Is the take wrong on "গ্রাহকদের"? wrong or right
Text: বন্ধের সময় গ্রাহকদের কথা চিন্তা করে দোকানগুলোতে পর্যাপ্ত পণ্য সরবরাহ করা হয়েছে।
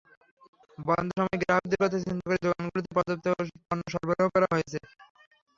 right